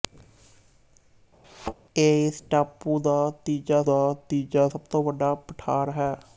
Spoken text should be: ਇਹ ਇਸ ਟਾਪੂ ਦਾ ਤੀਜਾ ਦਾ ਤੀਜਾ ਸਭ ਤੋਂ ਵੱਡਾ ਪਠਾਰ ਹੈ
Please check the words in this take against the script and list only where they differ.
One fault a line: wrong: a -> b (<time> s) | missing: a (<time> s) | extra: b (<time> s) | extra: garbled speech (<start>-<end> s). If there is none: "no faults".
no faults